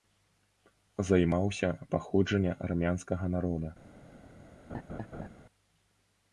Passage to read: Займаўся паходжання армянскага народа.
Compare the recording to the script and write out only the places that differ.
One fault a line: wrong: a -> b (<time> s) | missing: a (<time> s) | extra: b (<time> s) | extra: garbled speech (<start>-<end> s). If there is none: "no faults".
no faults